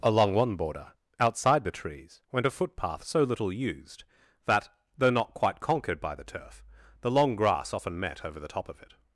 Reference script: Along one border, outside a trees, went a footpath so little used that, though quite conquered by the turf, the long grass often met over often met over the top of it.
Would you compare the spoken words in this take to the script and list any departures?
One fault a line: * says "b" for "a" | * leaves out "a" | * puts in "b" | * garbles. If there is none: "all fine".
* says "the" for "a"
* puts in "not"
* leaves out "often met over"